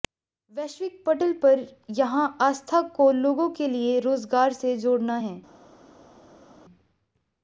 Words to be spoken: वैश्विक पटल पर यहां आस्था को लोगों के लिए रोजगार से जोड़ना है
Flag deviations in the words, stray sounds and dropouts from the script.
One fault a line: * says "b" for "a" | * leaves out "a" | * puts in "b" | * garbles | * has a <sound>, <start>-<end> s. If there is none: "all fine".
all fine